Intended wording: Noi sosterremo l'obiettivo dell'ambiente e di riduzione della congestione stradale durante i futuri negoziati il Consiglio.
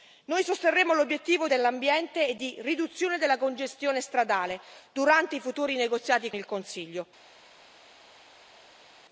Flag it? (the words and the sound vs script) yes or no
no